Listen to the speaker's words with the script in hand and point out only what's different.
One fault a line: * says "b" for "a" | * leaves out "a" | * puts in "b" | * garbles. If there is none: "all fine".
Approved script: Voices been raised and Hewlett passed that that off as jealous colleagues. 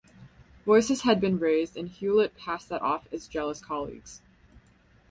* puts in "had"
* leaves out "that"